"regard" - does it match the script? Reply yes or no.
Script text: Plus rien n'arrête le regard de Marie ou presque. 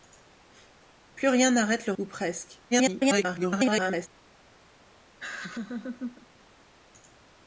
no